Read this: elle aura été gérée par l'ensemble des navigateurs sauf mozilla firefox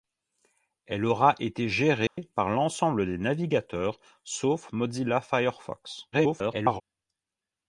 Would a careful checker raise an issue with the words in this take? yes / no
yes